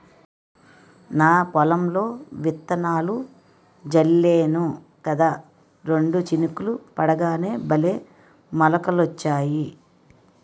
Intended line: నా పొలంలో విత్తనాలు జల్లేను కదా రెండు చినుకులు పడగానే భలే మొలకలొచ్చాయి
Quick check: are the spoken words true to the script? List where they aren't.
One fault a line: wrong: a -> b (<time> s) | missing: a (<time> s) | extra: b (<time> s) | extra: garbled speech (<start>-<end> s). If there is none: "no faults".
no faults